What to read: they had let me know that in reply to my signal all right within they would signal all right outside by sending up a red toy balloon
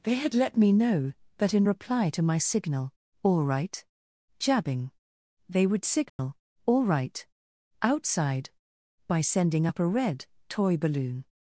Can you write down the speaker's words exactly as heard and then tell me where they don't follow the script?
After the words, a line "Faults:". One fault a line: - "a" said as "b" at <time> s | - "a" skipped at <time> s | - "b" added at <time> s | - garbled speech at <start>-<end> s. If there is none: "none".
they had let me know that in reply to my signal all right jabbing they would signal all right outside by sending up a red toy balloon
Faults:
- "within" said as "jabbing" at 4.4 s